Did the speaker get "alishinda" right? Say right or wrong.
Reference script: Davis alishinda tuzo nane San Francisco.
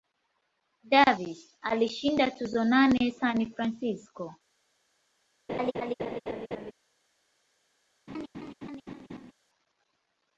right